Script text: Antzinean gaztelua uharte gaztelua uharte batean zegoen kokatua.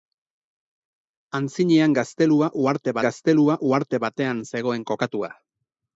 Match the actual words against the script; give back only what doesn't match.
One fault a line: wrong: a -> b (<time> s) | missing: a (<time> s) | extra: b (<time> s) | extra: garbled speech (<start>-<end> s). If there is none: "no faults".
no faults